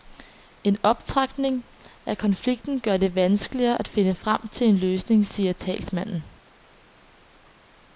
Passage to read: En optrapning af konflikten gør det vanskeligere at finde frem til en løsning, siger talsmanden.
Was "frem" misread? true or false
false